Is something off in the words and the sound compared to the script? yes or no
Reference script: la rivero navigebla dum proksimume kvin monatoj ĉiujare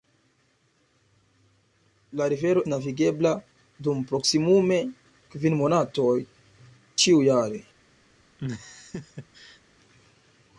yes